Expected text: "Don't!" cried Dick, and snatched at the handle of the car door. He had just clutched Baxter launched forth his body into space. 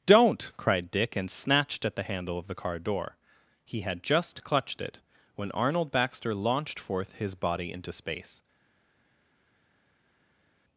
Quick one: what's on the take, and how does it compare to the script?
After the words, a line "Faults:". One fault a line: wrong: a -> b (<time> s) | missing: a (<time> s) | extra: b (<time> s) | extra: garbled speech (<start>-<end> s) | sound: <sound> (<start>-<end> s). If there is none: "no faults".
"Don't!" cried Dick, and snatched at the handle of the car door. He had just clutched it, when Arnold Baxter launched forth his body into space.
Faults:
extra: it when Arnold (4.8 s)